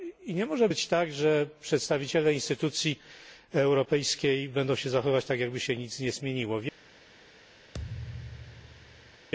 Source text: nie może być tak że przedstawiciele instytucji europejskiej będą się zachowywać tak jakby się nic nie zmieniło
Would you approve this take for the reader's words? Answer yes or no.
yes